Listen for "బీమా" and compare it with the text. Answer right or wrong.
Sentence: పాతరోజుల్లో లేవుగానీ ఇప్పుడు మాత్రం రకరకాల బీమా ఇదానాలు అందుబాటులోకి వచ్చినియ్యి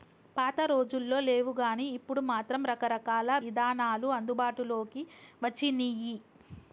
wrong